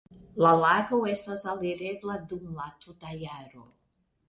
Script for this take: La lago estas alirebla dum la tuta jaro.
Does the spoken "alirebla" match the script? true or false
true